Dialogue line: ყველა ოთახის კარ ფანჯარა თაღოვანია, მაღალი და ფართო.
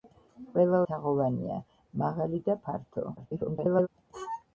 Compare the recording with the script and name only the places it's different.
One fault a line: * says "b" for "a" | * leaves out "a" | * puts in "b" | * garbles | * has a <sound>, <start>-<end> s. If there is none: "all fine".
* leaves out "ოთახის კარ ფანჯარა"
* garbles